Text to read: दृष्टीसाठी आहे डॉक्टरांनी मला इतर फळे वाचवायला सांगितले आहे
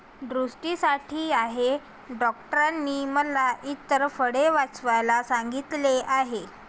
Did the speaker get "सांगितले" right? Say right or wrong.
right